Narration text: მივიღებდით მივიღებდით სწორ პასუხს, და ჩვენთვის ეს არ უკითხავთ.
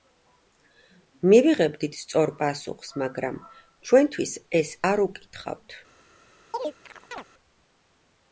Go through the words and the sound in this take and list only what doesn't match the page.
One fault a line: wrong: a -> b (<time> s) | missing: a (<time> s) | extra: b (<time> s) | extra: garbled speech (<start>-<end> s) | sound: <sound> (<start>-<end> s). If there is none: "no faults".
missing: მივიღებდით (2.0 s)
wrong: და -> მაგრამ (3.0 s)
sound: chirp (6.5-7.2 s)